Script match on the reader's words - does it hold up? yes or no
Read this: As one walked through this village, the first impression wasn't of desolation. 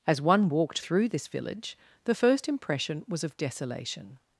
no